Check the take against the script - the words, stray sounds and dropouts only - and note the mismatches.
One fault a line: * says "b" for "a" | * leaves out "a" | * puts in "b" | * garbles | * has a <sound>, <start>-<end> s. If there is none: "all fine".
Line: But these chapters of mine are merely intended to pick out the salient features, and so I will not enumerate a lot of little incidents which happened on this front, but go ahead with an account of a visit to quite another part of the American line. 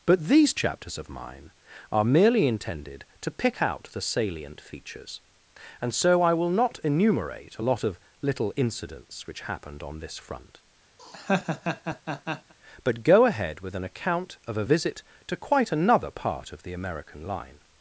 * has a laugh, 11.0-12.5 s